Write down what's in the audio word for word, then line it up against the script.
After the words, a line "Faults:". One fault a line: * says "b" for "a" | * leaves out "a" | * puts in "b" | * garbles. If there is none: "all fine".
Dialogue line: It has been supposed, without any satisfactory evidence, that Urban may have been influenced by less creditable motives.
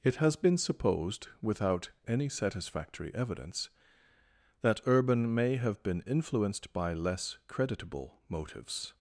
It has been supposed, without any satisfactory evidence, that Urban may have been influenced by less creditable motives.
Faults:
all fine